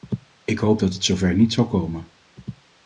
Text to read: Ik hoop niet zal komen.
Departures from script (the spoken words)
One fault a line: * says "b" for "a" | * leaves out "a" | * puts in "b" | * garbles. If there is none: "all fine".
* puts in "dat het zover"